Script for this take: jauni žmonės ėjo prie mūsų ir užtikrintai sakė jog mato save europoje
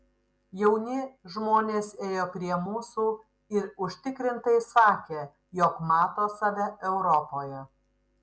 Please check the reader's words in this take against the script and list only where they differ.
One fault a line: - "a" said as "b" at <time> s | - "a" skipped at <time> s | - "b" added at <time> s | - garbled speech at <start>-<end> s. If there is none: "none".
none